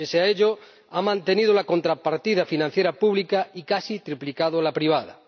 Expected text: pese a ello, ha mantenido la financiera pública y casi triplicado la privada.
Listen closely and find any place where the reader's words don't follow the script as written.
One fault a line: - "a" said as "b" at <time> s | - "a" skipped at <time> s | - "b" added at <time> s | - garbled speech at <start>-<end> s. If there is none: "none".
- "contrapartida" added at 1.6 s